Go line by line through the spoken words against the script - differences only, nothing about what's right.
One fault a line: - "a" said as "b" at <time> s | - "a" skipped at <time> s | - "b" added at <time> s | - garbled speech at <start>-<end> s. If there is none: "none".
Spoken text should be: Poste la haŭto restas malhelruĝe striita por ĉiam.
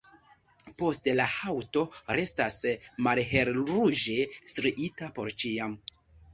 none